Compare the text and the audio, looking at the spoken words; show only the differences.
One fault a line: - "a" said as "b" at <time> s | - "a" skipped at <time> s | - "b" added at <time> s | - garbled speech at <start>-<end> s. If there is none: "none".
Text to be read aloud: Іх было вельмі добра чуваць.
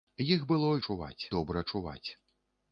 - "вельмі" said as "чуваць" at 0.9 s